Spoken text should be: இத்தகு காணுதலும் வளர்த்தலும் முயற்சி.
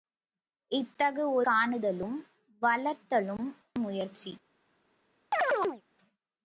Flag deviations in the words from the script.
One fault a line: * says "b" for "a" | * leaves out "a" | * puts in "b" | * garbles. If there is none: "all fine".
all fine